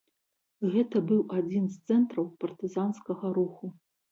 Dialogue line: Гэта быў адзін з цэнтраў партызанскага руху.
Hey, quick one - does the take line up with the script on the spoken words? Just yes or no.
yes